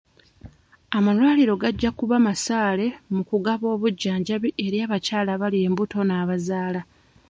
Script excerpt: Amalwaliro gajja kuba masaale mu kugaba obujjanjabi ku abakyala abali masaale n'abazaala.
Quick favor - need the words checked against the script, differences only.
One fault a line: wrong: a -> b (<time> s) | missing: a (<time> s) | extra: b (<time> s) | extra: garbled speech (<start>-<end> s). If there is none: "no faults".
wrong: ku -> eri (4.7 s)
wrong: masaale -> embuto (5.7 s)